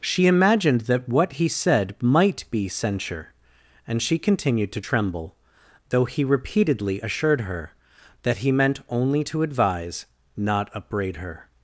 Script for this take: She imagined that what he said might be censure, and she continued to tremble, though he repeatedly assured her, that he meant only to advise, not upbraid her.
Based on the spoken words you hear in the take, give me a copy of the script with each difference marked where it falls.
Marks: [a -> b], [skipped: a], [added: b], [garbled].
She imagined that what he said might be censure, and she continued to tremble, though he repeatedly assured her, that he meant only to advise, not upbraid her.